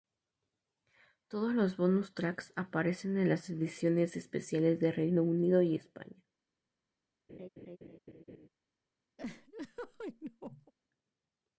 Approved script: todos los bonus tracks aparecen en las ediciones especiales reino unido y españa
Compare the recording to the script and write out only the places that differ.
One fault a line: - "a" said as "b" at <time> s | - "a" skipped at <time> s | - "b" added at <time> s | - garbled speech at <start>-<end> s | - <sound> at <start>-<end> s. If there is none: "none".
- "de" added at 4.8 s
- laugh at 7.3-8.5 s
- laugh at 9.2-10.7 s